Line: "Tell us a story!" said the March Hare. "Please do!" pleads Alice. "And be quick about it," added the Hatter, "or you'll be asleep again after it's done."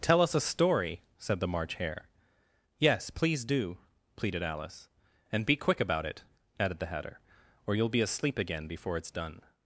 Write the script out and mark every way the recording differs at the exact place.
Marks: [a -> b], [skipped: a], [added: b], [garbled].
"Tell us a story!" said the March Hare. [added: Yes] "Please do!" [pleads -> pleaded] Alice. "And be quick about it," added the Hatter, "or you'll be asleep again [after -> before] it's done."